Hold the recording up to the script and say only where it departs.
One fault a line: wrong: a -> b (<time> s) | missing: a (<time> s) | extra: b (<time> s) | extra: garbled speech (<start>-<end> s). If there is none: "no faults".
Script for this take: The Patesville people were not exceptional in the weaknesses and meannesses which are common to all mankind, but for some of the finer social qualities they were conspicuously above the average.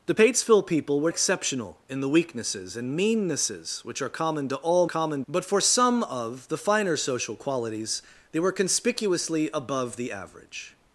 missing: not (1.1 s)
wrong: mankind -> common (4.8 s)